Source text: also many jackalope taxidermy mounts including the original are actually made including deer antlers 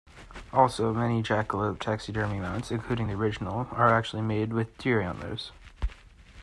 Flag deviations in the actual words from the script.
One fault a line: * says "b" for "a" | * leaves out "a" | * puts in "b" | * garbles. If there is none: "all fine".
* says "with" for "including"